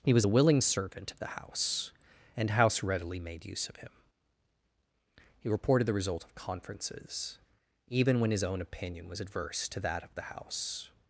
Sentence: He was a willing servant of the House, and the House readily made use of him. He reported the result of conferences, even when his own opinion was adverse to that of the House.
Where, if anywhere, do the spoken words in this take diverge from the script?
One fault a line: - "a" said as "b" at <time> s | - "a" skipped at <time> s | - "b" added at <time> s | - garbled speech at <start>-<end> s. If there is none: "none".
- "the" skipped at 2.5 s